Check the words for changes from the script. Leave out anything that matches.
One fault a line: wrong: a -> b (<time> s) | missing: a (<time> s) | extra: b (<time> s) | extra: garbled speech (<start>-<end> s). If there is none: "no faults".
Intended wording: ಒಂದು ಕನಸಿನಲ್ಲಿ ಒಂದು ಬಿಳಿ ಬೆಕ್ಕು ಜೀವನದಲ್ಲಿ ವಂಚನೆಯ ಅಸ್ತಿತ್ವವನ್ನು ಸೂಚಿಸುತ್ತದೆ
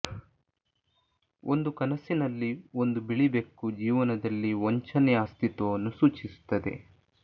no faults